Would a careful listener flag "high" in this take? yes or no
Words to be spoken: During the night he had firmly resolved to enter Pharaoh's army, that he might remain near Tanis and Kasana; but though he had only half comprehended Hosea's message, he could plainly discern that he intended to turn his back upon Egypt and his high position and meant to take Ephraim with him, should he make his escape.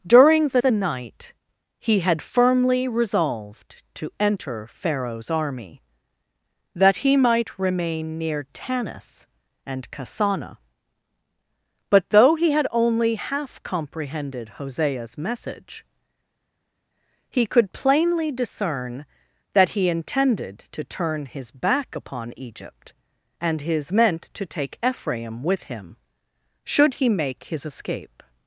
yes